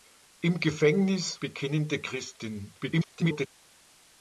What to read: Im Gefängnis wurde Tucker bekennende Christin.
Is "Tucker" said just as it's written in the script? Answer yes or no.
no